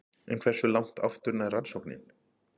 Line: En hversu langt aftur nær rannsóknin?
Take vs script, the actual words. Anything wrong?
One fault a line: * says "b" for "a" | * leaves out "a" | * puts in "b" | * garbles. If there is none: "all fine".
all fine